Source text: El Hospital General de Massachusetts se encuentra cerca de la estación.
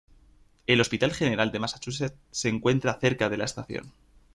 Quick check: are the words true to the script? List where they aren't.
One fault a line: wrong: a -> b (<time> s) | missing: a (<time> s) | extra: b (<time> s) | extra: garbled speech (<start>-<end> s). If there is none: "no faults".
no faults